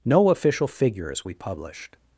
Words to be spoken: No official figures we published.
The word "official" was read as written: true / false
true